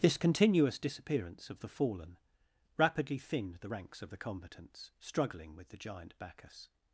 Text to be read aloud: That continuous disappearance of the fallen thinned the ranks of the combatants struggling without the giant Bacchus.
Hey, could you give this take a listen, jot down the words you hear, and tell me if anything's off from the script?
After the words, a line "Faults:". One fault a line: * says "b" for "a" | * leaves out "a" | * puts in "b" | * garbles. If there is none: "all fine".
This continuous disappearance of the fallen rapidly thinned the ranks of the combatants struggling with the giant Bacchus.
Faults:
* says "This" for "That"
* puts in "rapidly"
* says "with" for "without"